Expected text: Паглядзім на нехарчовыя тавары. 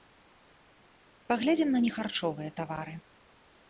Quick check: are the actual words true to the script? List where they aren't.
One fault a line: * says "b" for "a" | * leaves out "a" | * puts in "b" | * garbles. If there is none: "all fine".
all fine